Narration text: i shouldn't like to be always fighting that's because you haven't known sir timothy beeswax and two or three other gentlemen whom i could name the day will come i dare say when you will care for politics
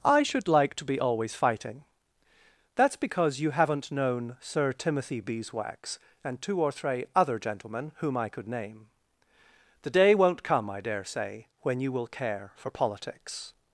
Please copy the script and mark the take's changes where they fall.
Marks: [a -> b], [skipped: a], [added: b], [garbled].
i [shouldn't -> should] like to be always fighting that's because you haven't known sir timothy beeswax and two or three other gentlemen whom i could name the day [will -> won't] come i dare say when you will care for politics